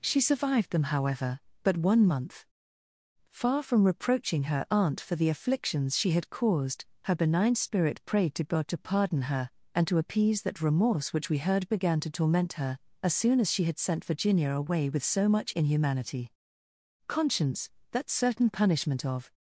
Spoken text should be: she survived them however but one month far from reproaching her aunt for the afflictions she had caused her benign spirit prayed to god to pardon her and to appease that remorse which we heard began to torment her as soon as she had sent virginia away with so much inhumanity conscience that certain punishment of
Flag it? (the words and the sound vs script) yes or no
no